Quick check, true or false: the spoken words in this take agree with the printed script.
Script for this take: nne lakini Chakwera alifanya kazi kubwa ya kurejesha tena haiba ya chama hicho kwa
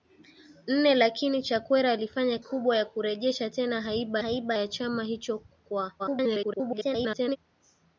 false